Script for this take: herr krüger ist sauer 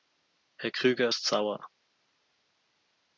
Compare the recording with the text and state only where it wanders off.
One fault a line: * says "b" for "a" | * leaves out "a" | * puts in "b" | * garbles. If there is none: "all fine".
all fine